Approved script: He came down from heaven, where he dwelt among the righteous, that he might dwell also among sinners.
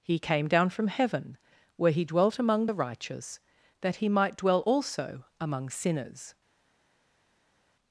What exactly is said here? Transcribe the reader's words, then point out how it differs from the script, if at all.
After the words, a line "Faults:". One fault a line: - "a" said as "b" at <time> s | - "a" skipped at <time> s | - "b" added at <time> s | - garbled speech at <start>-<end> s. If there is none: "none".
He came down from heaven, where he dwelt among the righteous, that he might dwell also among sinners.
Faults:
none